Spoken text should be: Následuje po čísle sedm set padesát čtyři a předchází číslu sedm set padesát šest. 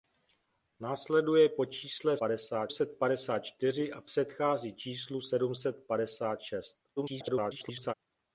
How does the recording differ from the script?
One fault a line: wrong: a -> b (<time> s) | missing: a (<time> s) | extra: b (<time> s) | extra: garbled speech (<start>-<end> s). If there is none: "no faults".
wrong: sedm -> padesát (2.2 s)
extra: garbled speech (7.0-7.9 s)